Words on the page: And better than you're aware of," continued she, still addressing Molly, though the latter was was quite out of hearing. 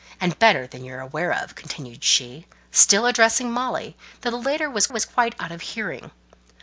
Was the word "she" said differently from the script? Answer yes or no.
no